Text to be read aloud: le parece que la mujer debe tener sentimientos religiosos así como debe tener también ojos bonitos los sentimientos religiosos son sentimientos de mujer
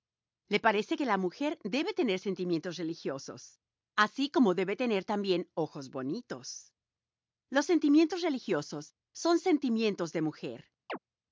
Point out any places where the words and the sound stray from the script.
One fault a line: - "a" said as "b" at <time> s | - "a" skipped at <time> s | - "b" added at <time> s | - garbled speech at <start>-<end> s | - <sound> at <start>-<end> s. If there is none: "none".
- chirp at 10.9-11.0 s